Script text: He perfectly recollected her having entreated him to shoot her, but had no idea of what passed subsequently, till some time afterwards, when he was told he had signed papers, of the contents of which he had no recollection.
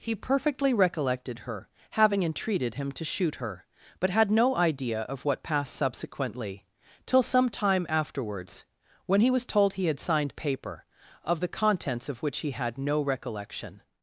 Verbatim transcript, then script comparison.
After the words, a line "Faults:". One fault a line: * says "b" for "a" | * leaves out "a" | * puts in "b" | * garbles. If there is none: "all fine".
He perfectly recollected her having entreated him to shoot her, but had no idea of what passed subsequently, till some time afterwards, when he was told he had signed paper, of the contents of which he had no recollection.
Faults:
* says "paper" for "papers"